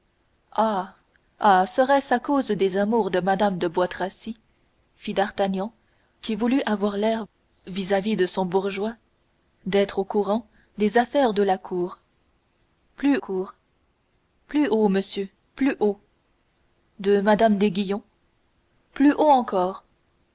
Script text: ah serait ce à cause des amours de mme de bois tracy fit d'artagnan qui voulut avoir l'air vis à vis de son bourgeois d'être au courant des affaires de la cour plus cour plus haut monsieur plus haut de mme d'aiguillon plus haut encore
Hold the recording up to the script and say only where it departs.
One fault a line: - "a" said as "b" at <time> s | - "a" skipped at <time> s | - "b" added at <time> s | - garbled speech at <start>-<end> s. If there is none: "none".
none